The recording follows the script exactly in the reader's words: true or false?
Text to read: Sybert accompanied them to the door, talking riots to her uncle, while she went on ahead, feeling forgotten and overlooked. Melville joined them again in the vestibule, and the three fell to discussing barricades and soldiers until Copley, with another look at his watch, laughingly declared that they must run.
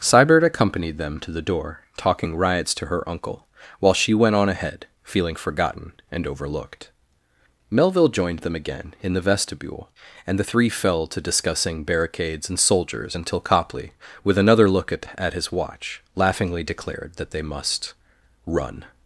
false